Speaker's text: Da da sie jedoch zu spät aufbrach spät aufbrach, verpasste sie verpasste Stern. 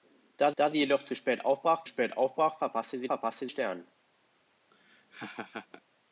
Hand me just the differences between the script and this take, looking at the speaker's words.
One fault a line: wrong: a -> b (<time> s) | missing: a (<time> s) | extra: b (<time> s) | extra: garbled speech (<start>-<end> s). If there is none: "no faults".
no faults